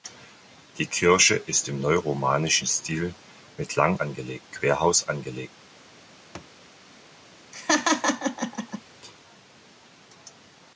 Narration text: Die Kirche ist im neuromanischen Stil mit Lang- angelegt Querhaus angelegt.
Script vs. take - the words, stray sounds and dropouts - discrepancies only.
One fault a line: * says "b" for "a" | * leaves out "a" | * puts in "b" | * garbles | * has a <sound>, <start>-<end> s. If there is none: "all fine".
* has a thud, 6.3-6.6 s
* has a laugh, 7.5-8.8 s